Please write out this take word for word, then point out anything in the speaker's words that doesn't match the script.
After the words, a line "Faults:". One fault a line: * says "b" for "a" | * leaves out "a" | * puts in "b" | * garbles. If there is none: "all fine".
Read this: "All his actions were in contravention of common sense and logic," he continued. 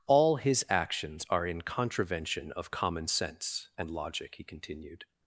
"All his actions are in contravention of common sense and logic," he continued.
Faults:
* says "are" for "were"